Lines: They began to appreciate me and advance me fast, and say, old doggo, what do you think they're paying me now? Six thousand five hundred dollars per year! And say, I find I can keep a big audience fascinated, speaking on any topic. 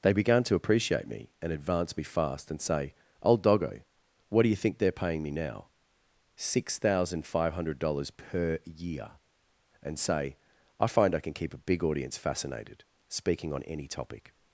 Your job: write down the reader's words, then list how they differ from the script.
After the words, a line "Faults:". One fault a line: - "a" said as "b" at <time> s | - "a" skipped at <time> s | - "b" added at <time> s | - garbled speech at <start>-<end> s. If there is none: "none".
They began to appreciate me and advance me fast, and say, old doggo, what do you think they're paying me now? Six thousand five hundred dollars per year! And say, I find I can keep a big audience fascinated, speaking on any topic.
Faults:
none